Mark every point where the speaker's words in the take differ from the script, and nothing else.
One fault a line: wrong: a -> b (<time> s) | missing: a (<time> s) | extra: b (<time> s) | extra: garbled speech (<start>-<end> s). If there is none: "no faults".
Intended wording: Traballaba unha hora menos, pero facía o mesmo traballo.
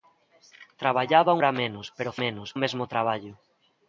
missing: unha (1.4 s)
wrong: facía -> menos (2.2 s)